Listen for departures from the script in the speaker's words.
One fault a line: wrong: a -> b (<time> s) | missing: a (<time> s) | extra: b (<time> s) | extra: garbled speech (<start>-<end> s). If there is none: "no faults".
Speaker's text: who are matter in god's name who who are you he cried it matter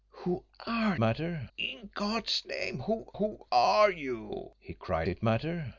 no faults